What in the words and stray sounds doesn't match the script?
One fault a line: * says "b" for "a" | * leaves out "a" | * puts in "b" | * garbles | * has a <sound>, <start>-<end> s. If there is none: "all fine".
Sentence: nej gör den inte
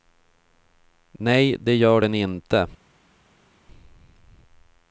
* puts in "det"